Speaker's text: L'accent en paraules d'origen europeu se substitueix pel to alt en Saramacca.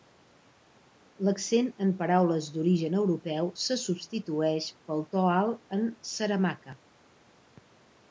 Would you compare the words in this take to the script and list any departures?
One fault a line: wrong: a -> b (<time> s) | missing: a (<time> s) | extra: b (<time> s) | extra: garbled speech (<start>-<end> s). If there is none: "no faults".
no faults